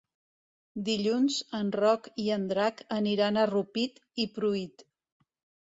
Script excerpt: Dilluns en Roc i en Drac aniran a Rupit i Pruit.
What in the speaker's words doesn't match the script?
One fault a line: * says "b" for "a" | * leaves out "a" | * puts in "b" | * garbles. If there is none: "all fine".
all fine